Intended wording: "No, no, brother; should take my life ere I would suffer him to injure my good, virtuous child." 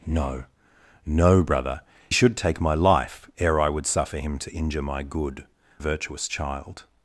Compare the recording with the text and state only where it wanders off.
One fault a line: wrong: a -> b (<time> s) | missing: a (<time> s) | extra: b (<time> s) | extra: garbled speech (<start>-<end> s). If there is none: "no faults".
no faults